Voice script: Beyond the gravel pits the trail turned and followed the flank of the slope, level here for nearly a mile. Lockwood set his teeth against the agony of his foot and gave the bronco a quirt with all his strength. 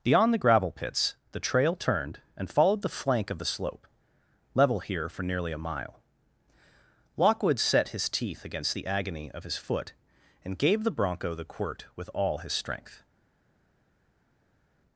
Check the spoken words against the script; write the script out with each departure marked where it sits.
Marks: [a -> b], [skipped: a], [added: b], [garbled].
Beyond the gravel pits the trail turned and followed the flank of the slope, level here for nearly a mile. Lockwood set his teeth against the agony of his foot and gave the bronco [a -> the] quirt with all his strength.